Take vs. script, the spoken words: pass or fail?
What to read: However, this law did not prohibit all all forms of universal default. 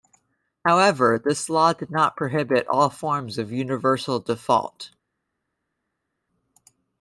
fail